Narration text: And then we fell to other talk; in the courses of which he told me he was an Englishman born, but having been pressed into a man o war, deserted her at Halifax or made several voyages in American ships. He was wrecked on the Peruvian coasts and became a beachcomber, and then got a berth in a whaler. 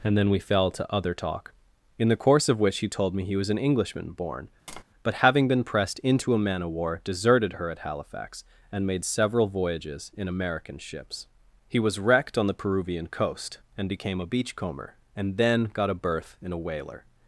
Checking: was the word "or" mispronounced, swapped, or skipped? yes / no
yes